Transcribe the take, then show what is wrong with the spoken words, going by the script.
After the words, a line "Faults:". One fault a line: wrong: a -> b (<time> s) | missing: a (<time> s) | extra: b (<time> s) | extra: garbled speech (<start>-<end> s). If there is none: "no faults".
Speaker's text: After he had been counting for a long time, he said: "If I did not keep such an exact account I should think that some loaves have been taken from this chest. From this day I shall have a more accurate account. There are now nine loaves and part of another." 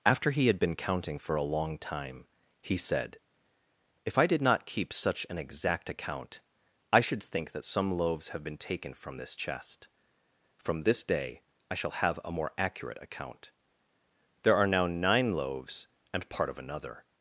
After he had been counting for a long time, he said: "If I did not keep such an exact account I should think that some loaves have been taken from this chest. From this day I shall have a more accurate account. There are now nine loaves and part of another."
Faults:
no faults